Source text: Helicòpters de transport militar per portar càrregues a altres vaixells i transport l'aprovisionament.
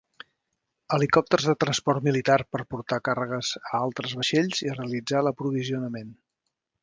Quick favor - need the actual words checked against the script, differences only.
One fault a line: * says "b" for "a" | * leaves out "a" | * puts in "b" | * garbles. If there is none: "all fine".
* says "realitzar" for "transport"